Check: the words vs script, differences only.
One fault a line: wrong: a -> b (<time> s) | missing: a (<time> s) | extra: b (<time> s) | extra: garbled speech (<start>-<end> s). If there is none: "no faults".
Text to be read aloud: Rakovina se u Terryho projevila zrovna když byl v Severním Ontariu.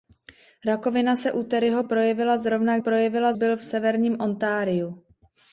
wrong: když -> projevila (2.8 s)